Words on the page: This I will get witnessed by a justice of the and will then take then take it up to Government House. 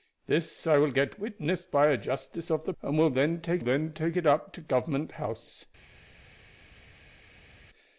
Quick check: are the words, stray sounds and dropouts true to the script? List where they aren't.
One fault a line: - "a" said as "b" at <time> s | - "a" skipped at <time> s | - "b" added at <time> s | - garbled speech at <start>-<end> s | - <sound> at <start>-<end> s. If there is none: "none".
none